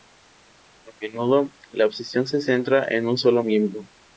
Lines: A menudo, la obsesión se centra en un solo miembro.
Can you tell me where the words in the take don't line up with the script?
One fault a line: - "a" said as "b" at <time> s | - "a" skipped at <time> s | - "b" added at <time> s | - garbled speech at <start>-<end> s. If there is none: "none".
none